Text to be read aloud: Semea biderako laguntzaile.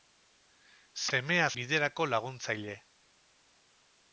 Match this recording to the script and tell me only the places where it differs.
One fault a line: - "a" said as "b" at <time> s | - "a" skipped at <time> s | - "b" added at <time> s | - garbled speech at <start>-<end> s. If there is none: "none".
none